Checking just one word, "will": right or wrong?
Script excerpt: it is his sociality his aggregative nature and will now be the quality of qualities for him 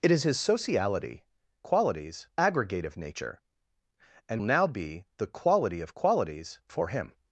wrong